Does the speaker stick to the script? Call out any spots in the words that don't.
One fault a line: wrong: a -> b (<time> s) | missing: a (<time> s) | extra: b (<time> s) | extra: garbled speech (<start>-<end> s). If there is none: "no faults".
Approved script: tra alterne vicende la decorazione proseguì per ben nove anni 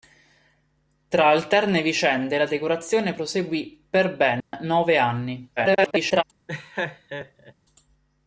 extra: garbled speech (5.6-6.2 s)